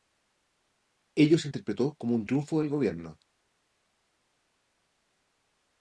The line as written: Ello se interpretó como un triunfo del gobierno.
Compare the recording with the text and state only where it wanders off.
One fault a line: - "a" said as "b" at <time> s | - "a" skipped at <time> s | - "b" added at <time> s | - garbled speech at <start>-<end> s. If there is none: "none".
none